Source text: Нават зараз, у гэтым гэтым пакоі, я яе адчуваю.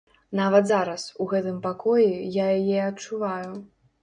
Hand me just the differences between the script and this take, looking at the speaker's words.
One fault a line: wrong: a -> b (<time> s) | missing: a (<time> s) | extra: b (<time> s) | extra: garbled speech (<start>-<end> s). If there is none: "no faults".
missing: гэтым (1.6 s)